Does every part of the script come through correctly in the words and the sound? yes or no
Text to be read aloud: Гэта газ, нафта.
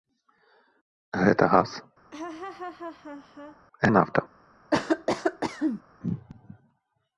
no